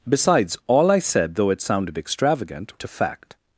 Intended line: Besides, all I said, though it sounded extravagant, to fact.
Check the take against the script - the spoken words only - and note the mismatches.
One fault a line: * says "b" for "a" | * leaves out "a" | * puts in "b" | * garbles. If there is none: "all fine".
all fine